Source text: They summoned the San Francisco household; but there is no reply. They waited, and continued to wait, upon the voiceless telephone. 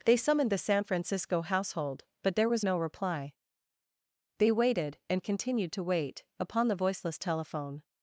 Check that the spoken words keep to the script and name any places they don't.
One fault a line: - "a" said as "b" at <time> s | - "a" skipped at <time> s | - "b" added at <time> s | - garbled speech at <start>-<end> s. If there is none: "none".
- "is" said as "was" at 2.5 s